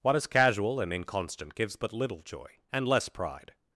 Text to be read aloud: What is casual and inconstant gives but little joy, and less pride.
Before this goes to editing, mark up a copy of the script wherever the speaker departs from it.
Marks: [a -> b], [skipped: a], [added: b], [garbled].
What is casual and inconstant gives but little joy, and less pride.